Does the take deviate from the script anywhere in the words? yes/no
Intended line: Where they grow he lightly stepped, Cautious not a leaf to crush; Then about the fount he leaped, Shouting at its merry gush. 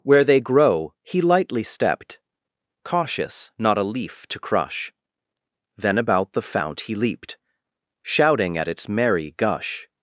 no